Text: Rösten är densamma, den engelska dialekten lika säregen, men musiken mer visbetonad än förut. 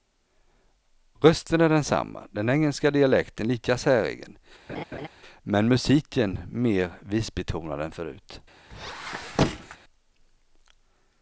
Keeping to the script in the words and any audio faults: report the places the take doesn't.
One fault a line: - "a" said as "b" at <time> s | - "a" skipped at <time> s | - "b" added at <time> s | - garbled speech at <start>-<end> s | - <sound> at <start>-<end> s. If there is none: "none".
- laugh at 4.7-5.1 s
- squeak at 8.7-9.8 s